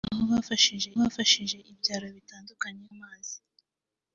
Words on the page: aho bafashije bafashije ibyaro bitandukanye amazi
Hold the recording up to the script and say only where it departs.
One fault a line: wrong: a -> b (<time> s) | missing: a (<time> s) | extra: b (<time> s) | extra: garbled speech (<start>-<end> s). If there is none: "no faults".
no faults